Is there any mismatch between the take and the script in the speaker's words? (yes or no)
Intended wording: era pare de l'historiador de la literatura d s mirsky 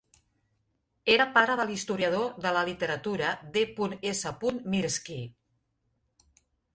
no